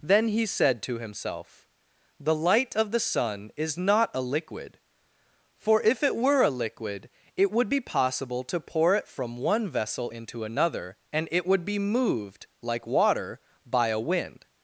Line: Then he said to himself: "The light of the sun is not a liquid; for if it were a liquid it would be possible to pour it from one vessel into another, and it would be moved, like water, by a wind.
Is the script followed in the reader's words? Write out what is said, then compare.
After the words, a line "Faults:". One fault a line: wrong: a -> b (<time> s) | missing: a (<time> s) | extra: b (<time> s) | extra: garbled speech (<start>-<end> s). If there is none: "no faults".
Then he said to himself: "The light of the sun is not a liquid; for if it were a liquid it would be possible to pour it from one vessel into another, and it would be moved, like water, by a wind.
Faults:
no faults